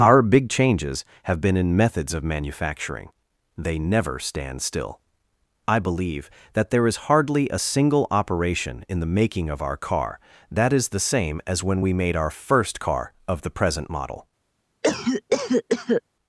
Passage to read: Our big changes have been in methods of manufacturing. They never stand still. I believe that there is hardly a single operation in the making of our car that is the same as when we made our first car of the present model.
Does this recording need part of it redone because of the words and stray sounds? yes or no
yes